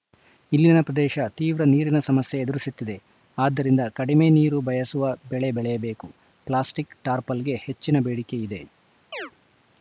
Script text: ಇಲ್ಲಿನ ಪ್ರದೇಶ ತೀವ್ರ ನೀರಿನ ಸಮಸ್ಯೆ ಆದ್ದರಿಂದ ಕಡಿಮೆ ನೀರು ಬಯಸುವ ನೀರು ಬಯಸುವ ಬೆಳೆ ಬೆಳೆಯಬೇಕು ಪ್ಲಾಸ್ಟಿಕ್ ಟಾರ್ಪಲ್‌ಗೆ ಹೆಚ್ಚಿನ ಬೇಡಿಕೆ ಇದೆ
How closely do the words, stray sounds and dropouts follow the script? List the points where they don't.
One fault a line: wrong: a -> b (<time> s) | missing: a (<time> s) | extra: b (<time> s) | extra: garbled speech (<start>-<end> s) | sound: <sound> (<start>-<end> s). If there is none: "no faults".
extra: ಎದುರಿಸುತ್ತಿದೆ (2.4 s)
missing: ನೀರು ಬಯಸುವ (5.1 s)
sound: chirp (9.1-9.3 s)